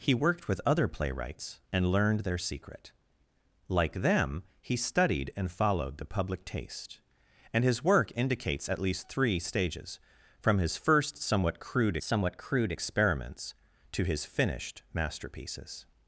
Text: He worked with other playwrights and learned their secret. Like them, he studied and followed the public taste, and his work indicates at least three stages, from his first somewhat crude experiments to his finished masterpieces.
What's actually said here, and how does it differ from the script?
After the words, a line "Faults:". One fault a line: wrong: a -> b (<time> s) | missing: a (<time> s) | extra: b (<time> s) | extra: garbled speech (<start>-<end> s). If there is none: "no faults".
He worked with other playwrights and learned their secret. Like them, he studied and followed the public taste, and his work indicates at least three stages, from his first somewhat crude somewhat crude experiments to his finished masterpieces.
Faults:
extra: somewhat crude (12.0 s)